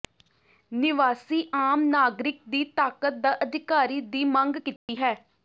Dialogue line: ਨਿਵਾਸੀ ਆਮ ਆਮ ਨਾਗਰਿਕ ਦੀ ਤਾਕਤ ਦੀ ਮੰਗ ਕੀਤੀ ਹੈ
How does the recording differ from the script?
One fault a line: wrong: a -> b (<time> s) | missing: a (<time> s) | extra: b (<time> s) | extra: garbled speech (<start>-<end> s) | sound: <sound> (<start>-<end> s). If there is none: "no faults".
missing: ਆਮ (1.8 s)
extra: ਦਾ ਅਧਿਕਾਰੀ (3.2 s)
sound: dropout (4.8-4.9 s)